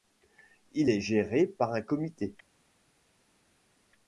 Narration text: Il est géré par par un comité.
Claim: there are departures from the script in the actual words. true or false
true